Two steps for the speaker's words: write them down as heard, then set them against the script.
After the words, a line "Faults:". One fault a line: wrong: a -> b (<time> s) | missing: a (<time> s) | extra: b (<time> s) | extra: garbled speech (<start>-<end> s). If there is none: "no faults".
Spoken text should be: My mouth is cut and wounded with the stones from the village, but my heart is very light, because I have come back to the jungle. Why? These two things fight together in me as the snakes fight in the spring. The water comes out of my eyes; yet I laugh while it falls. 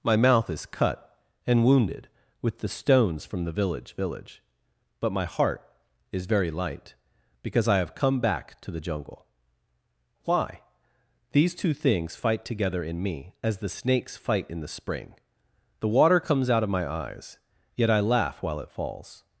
My mouth is cut and wounded with the stones from the village village, but my heart is very light, because I have come back to the jungle. Why? These two things fight together in me as the snakes fight in the spring. The water comes out of my eyes; yet I laugh while it falls.
Faults:
extra: village (4.0 s)